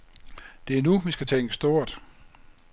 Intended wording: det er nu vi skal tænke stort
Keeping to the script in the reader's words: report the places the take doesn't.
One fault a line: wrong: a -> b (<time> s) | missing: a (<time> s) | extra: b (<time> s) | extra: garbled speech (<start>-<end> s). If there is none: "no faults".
no faults